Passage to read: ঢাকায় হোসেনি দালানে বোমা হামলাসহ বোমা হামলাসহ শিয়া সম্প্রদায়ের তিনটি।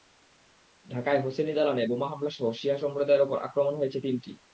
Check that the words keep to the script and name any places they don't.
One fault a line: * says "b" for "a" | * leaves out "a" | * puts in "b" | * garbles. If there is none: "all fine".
* says "শিয়া সম্প্রদায়ের ওপর আক্রমণ হয়েছে" for "বোমা হামলাসহ শিয়া সম্প্রদায়ের"